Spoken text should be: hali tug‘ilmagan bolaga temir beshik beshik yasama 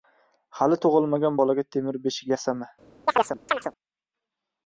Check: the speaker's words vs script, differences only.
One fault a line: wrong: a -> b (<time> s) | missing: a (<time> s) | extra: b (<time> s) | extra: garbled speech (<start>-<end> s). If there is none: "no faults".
missing: beshik (2.3 s)